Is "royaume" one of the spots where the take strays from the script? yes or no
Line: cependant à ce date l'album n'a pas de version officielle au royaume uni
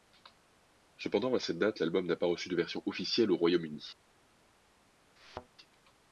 no